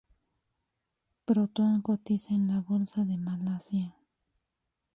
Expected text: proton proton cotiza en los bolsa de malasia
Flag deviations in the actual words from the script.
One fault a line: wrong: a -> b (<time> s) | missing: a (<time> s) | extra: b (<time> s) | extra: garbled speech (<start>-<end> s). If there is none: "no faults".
missing: proton (1.8 s)
wrong: los -> la (2.5 s)